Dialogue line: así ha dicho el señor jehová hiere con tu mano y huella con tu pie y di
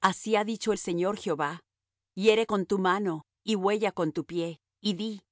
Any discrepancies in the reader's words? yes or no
no